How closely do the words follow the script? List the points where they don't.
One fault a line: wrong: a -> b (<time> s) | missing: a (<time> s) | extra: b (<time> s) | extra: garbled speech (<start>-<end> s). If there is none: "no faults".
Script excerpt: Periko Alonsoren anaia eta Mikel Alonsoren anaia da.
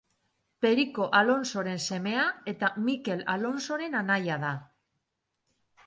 wrong: anaia -> semea (1.9 s)